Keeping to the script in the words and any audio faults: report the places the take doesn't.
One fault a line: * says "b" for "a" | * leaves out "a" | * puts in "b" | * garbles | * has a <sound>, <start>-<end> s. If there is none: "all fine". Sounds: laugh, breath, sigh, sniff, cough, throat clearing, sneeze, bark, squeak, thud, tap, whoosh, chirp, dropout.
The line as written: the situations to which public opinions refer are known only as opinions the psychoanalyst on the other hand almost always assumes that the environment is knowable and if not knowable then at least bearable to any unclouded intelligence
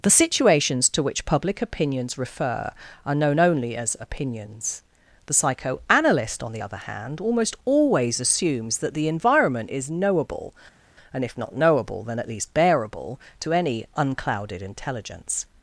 all fine